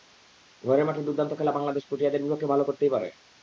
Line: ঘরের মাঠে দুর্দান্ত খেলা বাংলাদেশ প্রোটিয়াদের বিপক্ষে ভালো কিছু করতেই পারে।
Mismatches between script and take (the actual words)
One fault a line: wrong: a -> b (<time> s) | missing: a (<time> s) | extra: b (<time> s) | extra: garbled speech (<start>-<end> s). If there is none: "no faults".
missing: কিছু (2.6 s)